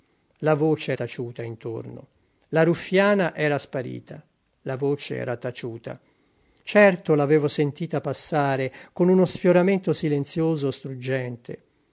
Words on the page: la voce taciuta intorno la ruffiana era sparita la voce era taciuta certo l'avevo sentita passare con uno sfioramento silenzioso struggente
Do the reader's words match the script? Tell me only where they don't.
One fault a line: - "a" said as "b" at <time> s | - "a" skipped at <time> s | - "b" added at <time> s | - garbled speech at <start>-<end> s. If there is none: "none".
none